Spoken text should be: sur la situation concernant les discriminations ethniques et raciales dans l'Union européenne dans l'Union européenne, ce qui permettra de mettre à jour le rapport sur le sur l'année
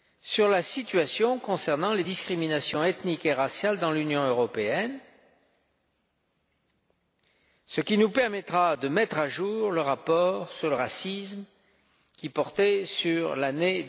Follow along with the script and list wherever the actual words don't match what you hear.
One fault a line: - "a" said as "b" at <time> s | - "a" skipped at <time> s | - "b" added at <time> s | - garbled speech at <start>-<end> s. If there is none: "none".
- "dans l'Union européenne" skipped at 5.0 s
- "nous" added at 8.0 s
- "racisme qui portait" added at 10.7 s